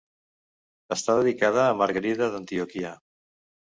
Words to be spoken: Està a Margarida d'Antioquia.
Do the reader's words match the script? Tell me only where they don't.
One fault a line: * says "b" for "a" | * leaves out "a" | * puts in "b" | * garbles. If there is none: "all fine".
* puts in "dedicada"